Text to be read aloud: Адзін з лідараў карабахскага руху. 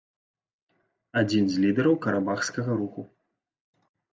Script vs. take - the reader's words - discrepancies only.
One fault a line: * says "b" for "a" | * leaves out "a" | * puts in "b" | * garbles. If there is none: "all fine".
all fine